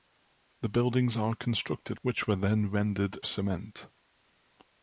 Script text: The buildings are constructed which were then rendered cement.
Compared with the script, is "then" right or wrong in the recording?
right